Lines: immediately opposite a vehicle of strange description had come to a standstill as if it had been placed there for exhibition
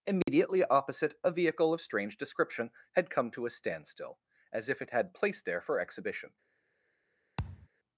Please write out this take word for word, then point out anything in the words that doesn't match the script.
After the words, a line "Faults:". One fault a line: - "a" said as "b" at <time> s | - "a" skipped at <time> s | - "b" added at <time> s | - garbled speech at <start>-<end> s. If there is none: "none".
immediately opposite a vehicle of strange description had come to a standstill as if it had placed there for exhibition
Faults:
- "been" skipped at 5.1 s